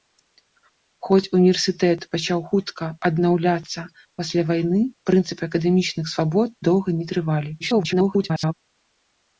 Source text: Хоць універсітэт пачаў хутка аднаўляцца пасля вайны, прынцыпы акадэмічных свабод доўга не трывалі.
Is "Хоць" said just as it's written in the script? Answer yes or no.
yes